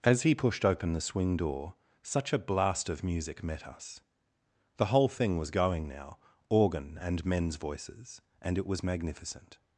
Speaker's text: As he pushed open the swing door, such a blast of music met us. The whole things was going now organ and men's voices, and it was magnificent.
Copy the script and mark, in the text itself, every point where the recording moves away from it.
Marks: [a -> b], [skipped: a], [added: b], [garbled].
As he pushed open the swing door, such a blast of music met us. The whole [things -> thing] was going now organ and men's voices, and it was magnificent.